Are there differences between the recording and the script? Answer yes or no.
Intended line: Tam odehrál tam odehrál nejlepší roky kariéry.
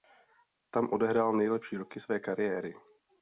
yes